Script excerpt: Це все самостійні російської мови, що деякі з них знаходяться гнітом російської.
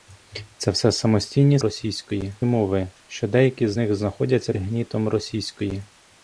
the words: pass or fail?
pass